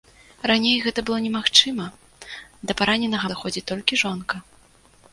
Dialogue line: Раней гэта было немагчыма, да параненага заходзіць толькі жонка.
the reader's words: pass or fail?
pass